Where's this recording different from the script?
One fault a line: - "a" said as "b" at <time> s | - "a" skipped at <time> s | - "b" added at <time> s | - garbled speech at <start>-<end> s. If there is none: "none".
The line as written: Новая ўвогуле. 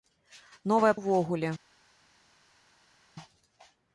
none